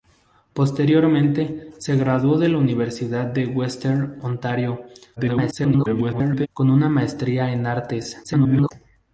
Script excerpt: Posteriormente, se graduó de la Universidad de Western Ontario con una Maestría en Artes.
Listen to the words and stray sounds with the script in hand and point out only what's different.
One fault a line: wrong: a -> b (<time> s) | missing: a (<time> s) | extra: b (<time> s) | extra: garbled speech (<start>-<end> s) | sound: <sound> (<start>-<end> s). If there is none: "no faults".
extra: garbled speech (5.2-6.5 s)
extra: garbled speech (8.2-8.7 s)